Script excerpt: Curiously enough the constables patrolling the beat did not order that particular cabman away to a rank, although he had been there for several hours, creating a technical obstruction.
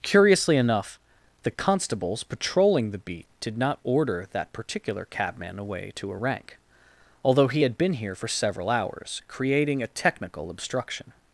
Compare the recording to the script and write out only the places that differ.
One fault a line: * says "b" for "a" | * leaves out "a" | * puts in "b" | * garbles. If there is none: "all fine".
* says "here" for "there"